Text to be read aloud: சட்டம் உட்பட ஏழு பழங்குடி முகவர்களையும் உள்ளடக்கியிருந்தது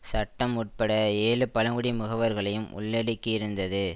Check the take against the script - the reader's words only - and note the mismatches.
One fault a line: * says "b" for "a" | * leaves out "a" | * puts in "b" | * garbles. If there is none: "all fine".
all fine